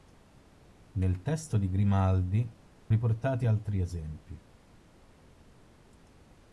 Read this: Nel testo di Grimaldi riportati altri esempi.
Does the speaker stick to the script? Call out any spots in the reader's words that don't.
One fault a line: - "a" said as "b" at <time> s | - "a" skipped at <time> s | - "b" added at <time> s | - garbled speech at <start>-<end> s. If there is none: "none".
none